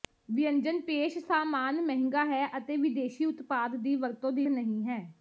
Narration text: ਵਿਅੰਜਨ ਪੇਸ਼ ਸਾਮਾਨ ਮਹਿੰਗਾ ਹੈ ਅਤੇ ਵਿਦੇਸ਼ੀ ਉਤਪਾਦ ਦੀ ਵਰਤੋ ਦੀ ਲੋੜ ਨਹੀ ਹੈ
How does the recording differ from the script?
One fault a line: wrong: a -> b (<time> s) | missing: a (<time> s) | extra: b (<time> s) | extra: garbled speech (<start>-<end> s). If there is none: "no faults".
missing: ਲੋੜ (4.5 s)